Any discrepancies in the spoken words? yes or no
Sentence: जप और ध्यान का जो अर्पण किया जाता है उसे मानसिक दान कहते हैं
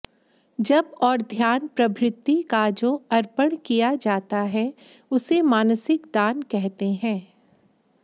yes